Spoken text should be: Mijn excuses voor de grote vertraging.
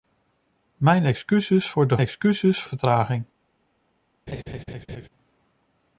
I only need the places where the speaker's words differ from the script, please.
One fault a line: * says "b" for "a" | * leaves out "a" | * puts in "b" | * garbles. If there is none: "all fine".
* says "excuses" for "grote"